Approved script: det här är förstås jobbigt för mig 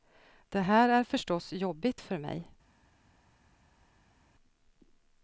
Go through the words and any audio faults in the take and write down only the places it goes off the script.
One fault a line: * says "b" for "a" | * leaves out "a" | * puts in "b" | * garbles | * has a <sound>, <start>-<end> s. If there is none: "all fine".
all fine